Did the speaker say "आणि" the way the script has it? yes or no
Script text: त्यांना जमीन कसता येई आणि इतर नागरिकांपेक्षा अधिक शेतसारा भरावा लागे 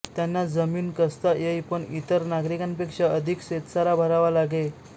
no